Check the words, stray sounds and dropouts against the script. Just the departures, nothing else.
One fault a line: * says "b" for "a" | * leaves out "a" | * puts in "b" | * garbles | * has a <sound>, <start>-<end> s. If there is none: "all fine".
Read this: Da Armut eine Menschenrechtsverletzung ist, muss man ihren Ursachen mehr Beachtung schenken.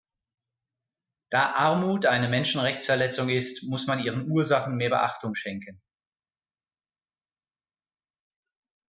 all fine